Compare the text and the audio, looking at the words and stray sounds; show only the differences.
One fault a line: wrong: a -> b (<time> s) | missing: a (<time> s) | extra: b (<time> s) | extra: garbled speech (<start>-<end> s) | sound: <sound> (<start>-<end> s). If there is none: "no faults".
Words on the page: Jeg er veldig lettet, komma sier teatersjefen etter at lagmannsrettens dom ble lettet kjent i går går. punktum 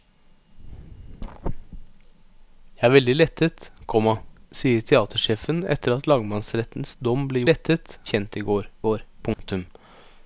sound: dropout (9.3-9.4 s)